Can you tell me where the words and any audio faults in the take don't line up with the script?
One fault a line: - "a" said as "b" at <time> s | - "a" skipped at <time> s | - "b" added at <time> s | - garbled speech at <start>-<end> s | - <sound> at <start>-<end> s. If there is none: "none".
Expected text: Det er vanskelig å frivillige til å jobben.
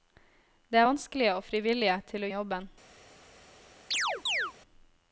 - chirp at 3.9-4.5 s